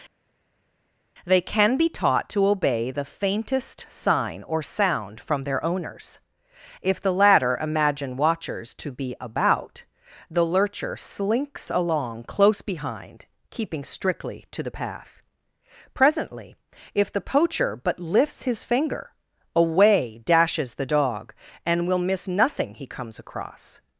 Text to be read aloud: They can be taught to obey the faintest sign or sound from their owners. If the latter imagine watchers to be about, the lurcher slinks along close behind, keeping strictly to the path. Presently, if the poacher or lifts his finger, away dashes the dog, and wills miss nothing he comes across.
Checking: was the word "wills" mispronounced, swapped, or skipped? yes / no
yes